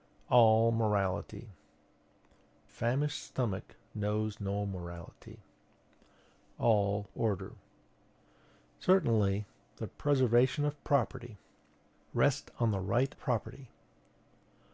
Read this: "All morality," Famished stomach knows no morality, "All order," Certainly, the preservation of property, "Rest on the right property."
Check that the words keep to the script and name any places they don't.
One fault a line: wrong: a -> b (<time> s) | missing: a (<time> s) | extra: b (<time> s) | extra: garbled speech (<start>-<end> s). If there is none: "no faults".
no faults